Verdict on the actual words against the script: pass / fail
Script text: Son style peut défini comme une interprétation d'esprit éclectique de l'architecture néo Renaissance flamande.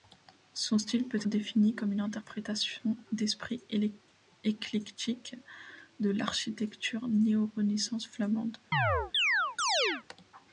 pass